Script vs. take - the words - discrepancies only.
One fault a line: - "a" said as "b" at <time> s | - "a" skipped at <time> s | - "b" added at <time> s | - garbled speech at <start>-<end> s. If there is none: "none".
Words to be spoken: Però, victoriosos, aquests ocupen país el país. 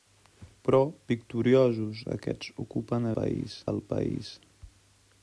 none